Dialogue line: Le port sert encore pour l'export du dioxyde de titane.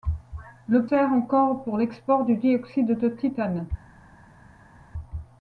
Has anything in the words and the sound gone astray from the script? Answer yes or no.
yes